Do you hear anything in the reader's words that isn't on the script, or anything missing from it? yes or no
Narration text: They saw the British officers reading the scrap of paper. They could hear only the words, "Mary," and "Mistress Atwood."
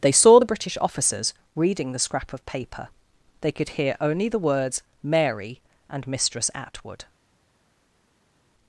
no